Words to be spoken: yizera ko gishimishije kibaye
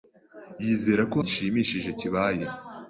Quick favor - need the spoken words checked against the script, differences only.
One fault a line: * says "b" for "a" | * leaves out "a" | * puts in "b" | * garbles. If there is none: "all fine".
all fine